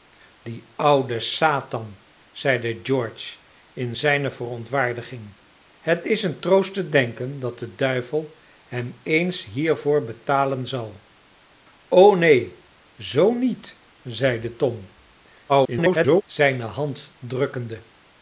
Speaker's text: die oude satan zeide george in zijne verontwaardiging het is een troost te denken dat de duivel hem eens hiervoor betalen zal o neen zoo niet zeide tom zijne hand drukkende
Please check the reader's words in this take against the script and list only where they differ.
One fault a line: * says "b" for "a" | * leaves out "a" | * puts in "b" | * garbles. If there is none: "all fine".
* garbles